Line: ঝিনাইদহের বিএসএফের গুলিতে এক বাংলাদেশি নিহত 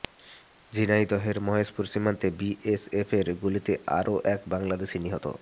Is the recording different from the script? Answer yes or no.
yes